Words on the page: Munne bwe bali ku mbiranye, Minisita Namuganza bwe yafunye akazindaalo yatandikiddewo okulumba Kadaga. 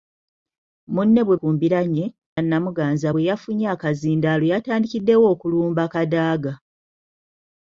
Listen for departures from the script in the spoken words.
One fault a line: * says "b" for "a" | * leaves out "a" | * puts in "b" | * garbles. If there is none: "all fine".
* leaves out "bali"
* leaves out "Minisita"